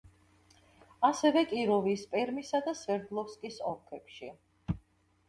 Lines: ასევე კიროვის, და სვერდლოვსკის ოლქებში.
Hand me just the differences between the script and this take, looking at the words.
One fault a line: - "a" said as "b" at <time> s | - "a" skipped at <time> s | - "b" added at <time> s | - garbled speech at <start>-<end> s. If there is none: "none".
- "პერმისა" added at 2.1 s